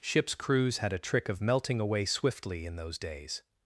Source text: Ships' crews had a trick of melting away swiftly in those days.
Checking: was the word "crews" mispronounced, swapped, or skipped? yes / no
no